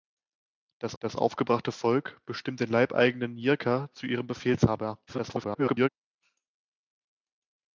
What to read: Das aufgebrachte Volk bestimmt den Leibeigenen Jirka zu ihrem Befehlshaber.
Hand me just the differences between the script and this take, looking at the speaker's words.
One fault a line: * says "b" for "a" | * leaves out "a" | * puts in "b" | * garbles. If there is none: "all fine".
* puts in "das"
* garbles